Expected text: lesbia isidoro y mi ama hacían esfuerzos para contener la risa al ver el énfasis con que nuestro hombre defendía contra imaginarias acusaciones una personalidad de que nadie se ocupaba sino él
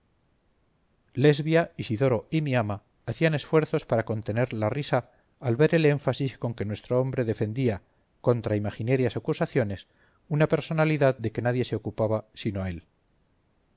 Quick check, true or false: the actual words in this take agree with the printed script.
true